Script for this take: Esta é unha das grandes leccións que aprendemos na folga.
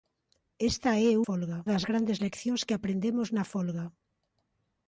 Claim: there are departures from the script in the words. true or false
true